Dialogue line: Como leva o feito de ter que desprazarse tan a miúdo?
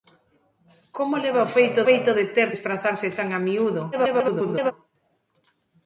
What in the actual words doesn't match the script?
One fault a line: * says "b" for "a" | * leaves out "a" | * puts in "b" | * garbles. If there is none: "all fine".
* puts in "feito"
* leaves out "que"
* garbles